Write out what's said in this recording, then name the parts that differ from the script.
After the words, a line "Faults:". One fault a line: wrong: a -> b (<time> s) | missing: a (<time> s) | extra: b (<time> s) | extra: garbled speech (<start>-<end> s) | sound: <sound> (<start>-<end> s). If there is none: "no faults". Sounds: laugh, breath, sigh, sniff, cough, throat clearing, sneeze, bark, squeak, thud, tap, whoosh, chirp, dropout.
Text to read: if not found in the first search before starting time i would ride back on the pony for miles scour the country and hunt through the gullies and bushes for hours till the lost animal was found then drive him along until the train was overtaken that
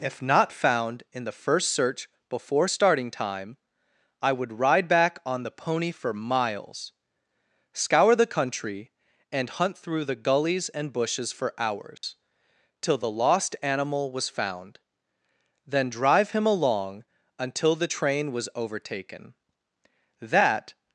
if not found in the first search before starting time i would ride back on the pony for miles scour the country and hunt through the gullies and bushes for hours till the lost animal was found then drive him along until the train was overtaken that
Faults:
sound: dropout (12.0-12.0 s)